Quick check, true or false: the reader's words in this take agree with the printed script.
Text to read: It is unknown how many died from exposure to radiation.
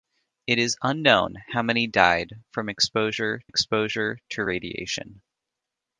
false